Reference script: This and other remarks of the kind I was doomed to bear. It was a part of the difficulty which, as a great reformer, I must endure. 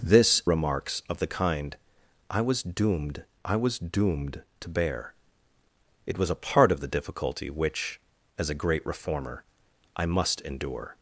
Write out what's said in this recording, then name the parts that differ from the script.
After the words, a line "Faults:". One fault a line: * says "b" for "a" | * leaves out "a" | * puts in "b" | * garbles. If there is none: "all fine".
This remarks of the kind I was doomed I was doomed to bear. It was a part of the difficulty which, as a great reformer, I must endure.
Faults:
* leaves out "and other"
* puts in "I was doomed"